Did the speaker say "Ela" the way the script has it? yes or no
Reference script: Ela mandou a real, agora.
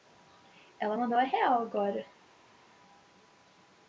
yes